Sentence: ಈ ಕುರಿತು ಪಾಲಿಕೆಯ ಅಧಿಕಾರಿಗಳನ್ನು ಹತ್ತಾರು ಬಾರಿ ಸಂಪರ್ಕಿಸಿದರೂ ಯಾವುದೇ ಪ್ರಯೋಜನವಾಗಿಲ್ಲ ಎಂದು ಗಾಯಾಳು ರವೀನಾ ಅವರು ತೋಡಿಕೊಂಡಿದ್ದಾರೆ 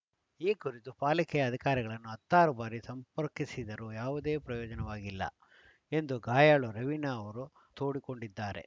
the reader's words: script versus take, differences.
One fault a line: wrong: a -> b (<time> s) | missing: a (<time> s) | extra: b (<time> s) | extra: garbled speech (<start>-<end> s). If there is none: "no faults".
no faults